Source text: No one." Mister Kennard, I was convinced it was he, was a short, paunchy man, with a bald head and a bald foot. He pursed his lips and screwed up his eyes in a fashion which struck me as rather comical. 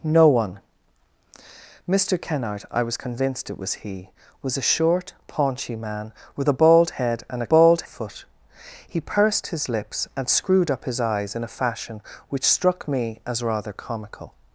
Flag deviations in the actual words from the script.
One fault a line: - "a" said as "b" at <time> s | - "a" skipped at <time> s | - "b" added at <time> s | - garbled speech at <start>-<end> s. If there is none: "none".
none